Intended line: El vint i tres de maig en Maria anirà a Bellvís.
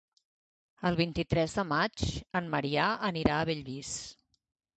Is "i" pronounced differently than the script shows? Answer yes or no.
no